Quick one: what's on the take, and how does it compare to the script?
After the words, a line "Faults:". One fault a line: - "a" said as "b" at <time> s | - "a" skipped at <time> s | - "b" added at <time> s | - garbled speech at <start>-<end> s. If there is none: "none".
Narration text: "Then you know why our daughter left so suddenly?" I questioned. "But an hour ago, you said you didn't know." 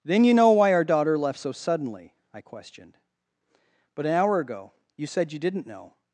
"Then you know why our daughter left so suddenly?" I questioned. "But an hour ago, you said you didn't know."
Faults:
none